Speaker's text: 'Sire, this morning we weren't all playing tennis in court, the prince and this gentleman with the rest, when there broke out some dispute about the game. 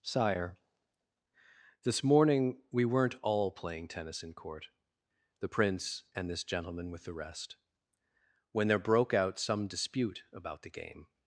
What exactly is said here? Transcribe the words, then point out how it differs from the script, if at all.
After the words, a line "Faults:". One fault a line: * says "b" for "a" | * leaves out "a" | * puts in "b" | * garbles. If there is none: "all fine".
'Sire, this morning we weren't all playing tennis in court, the prince and this gentleman with the rest, when there broke out some dispute about the game.
Faults:
all fine